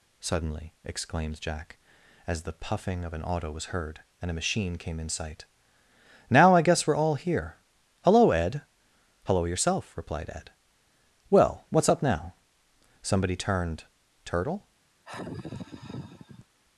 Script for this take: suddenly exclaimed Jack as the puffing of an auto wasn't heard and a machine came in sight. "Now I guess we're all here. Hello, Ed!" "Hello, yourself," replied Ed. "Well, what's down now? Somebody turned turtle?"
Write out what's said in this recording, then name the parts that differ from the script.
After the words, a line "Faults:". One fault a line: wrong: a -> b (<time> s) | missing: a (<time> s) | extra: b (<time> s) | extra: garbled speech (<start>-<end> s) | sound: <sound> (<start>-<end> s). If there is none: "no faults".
suddenly exclaimed Jack as the puffing of an auto was heard and a machine came in sight. "Now I guess we're all here. Hello, Ed!" "Hello, yourself," replied Ed. "Well, what's up now? Somebody turned turtle?"
Faults:
wrong: wasn't -> was (3.5 s)
wrong: down -> up (11.9 s)
sound: sigh (15.0-16.5 s)